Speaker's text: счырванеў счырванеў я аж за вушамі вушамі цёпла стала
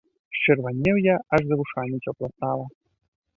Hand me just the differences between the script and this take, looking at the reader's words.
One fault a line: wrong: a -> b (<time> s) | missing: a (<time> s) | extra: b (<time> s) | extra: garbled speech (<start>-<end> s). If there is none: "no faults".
missing: счырванеў (1.0 s)
missing: вушамі (2.0 s)